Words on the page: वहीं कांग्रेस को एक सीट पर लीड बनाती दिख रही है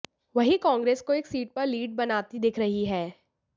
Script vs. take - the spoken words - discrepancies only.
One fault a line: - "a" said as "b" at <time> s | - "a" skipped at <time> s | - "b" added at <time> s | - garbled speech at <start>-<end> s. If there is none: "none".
none